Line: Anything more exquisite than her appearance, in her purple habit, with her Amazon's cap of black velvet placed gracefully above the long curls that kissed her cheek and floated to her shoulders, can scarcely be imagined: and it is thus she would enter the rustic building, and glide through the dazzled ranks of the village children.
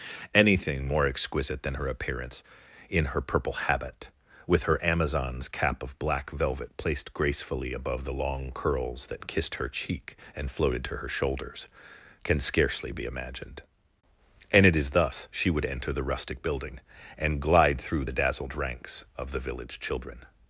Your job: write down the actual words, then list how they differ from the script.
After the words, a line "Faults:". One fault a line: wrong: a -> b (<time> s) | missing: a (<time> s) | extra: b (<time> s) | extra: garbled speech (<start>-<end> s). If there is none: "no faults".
Anything more exquisite than her appearance, in her purple habit, with her Amazon's cap of black velvet placed gracefully above the long curls that kissed her cheek and floated to her shoulders, can scarcely be imagined: and it is thus she would enter the rustic building, and glide through the dazzled ranks of the village children.
Faults:
no faults